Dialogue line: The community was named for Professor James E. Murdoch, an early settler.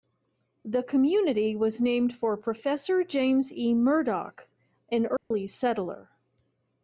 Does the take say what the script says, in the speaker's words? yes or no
yes